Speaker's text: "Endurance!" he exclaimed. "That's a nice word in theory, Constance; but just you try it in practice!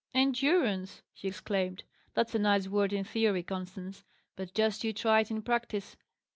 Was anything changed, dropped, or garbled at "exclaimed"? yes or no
no